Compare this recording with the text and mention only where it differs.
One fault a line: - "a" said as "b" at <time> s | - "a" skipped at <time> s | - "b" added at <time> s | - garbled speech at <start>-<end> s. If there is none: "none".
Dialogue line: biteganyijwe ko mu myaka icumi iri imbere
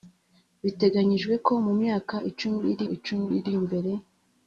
- "icumi iri" added at 2.9 s